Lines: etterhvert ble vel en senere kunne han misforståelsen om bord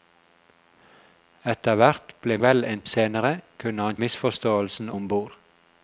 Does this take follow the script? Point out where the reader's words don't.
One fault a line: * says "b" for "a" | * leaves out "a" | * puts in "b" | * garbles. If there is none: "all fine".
all fine